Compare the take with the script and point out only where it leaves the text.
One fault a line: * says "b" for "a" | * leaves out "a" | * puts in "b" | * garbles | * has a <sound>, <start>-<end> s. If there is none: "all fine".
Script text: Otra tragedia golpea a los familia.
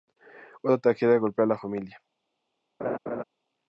* says "la" for "los"
* has a laugh, 2.8-3.2 s